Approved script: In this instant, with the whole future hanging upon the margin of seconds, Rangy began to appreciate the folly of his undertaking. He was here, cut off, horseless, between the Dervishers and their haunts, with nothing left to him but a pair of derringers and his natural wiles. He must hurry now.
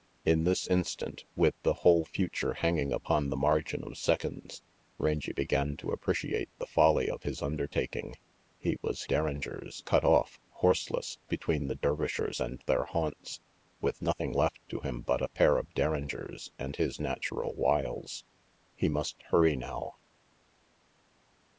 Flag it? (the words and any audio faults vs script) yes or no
yes